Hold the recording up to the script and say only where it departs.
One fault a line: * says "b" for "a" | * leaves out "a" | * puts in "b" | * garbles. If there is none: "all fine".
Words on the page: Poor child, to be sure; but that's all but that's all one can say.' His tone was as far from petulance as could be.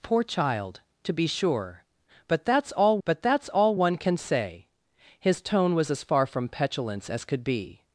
all fine